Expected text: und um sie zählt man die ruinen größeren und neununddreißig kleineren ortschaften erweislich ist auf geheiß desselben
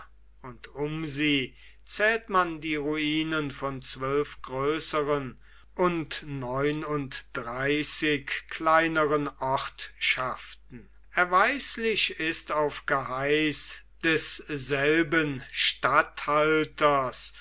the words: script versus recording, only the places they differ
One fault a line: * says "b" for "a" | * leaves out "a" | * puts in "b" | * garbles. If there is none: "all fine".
* puts in "von zwölf"